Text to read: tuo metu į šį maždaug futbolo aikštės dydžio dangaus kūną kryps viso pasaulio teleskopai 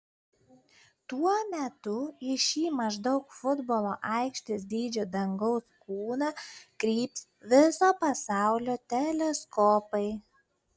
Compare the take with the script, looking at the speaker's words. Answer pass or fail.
pass